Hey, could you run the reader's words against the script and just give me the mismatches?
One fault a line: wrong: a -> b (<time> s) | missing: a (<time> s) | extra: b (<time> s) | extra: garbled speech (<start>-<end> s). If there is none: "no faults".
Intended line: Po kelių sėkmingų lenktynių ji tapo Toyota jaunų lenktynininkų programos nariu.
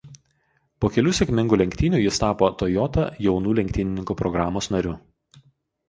wrong: ji -> jis (2.0 s)